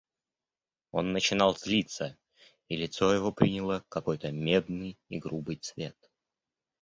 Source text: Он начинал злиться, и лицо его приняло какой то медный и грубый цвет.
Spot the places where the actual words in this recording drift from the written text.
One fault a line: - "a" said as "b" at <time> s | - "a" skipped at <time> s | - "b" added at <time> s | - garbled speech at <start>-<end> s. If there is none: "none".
none